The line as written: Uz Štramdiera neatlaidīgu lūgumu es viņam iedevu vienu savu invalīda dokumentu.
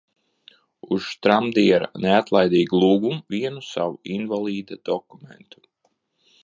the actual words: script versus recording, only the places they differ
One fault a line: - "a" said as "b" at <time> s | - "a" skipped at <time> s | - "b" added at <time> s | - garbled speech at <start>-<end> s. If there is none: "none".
- "es viņam iedevu" skipped at 3.2 s